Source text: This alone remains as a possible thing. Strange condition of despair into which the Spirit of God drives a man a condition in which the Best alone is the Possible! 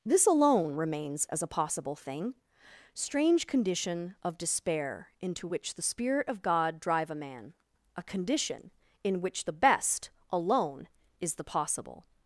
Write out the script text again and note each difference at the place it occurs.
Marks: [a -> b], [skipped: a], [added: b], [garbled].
This alone remains as a possible thing. Strange condition of despair into which the Spirit of God [drives -> drive] a man a condition in which the Best alone is the Possible!